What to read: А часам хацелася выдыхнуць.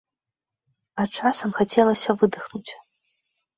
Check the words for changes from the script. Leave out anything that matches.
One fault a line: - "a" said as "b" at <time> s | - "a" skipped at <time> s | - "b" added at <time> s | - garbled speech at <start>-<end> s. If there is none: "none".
none